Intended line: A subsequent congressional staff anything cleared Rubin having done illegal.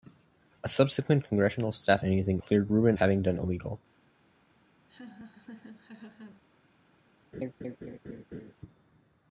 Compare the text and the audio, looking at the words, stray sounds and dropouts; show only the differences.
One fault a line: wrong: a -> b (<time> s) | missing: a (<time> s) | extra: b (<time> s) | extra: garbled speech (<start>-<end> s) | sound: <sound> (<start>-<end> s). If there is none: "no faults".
sound: laugh (4.9-6.4 s)
sound: laugh (7.3-8.5 s)